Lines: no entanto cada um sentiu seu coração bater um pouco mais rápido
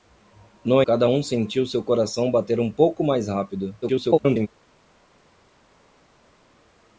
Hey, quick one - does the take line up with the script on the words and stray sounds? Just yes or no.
no